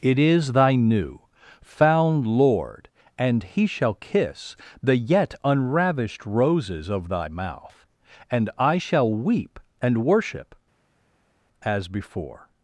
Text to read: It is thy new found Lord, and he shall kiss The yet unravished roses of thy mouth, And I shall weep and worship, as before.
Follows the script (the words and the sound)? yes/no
yes